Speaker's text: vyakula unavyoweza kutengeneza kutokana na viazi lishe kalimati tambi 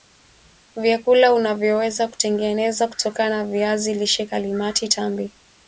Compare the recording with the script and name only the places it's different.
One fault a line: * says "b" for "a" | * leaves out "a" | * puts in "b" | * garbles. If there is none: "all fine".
all fine